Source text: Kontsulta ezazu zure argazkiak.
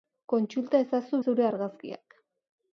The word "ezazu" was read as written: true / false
true